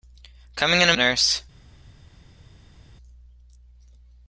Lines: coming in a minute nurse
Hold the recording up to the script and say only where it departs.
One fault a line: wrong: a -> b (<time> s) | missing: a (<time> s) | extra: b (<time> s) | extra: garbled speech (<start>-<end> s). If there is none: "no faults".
missing: minute (0.9 s)